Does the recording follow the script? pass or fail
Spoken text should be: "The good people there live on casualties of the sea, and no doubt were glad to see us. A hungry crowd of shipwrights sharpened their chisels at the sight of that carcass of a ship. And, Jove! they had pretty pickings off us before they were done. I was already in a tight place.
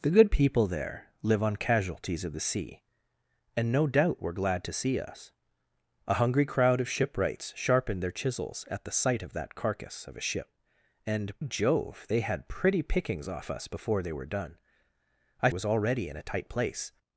pass